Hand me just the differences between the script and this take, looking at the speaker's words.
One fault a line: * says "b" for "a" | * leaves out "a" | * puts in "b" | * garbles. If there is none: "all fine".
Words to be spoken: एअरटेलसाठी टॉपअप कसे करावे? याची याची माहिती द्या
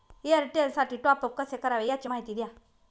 * leaves out "याची"